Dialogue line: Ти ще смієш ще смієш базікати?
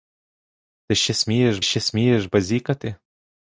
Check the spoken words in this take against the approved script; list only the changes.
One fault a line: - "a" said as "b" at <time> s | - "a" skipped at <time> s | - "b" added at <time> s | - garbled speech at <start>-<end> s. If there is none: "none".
none